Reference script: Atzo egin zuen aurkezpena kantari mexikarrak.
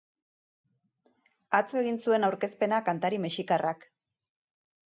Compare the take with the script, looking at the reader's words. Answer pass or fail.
pass